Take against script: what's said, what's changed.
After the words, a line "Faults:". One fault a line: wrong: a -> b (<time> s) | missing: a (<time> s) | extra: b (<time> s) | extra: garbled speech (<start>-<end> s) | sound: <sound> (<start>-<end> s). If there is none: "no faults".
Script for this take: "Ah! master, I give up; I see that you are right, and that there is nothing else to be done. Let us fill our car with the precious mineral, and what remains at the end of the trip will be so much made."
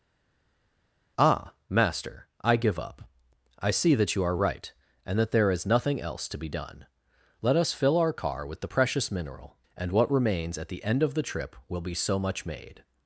"Ah! master, I give up; I see that you are right, and that there is nothing else to be done. Let us fill our car with the precious mineral, and what remains at the end of the trip will be so much made."
Faults:
no faults